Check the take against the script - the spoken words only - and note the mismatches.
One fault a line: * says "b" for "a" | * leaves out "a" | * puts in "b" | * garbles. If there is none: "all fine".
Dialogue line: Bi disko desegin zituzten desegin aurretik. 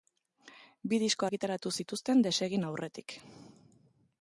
* says "argitaratu" for "desegin"